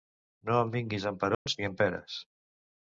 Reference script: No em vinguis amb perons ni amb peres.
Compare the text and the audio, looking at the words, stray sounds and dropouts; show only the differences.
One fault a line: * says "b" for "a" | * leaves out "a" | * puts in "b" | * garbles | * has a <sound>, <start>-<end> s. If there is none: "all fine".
* has a dropout, 1.3-1.5 s